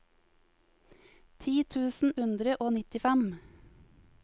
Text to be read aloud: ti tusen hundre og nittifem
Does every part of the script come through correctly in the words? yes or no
yes